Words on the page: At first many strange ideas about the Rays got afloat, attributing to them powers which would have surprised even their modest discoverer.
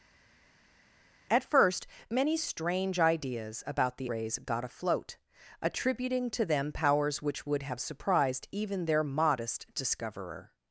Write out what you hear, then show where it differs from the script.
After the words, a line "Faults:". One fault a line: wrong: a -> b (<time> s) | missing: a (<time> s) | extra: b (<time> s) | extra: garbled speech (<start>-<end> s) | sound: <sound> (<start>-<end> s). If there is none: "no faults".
At first many strange ideas about the Rays got afloat, attributing to them powers which would have surprised even their modest discoverer.
Faults:
no faults